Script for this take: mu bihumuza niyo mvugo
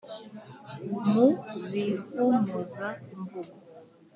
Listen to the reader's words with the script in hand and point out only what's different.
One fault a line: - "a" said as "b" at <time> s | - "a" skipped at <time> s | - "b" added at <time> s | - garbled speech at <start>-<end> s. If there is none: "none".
- "niyo" skipped at 2.9 s